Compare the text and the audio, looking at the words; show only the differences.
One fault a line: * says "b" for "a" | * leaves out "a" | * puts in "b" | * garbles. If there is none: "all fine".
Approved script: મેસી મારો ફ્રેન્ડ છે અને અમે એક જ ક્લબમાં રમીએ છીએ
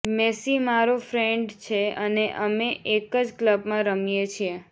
all fine